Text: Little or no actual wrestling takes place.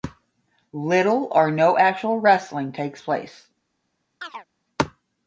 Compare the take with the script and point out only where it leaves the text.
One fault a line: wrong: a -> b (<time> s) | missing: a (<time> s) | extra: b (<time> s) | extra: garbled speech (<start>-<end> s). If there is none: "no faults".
no faults